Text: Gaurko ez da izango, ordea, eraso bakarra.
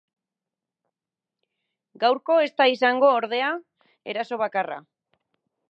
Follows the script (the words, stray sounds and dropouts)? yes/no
yes